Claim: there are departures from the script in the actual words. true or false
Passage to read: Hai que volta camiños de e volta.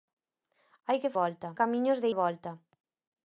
false